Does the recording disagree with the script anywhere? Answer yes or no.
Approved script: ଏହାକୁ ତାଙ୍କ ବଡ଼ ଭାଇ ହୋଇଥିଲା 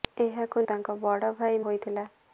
no